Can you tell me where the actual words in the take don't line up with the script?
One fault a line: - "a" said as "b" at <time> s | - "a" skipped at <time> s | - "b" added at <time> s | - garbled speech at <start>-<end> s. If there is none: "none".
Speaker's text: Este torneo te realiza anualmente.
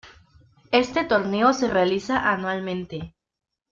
- "te" said as "se" at 1.5 s